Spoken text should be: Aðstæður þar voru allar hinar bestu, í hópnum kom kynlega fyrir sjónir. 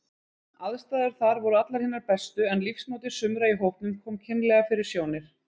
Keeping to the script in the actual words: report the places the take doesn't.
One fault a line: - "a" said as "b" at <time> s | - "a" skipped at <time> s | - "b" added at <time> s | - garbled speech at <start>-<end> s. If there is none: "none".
- "en lífsmáti sumra" added at 2.5 s